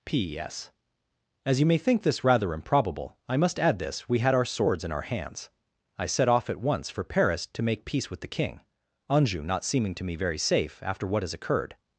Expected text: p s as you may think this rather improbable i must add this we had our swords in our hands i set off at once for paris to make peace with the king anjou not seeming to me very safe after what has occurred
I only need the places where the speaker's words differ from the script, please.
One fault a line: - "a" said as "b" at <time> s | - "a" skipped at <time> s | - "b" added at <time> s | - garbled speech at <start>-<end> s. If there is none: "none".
none